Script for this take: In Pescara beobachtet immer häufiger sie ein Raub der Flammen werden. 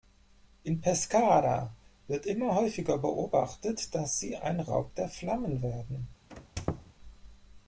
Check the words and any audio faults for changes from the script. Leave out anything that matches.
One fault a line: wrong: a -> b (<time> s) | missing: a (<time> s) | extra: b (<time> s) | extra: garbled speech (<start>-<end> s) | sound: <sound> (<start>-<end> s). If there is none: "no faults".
wrong: beobachtet -> wird (2.1 s)
extra: beobachtet dass (3.0 s)
sound: squeak (6.3-6.9 s)